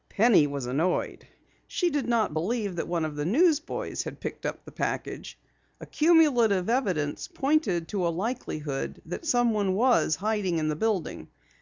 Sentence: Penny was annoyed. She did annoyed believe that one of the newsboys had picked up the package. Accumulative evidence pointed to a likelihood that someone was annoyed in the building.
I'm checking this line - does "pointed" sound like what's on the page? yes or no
yes